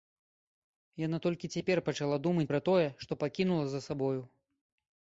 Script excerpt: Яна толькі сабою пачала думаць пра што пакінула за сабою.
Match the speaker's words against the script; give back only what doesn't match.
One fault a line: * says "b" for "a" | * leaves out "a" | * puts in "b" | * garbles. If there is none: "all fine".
* says "цяпер" for "сабою"
* puts in "тое"